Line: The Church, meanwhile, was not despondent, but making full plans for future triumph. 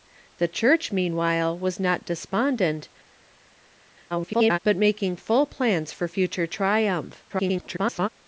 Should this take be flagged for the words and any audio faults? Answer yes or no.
yes